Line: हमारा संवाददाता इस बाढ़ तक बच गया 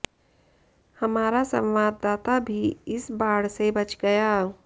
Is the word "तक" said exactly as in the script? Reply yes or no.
no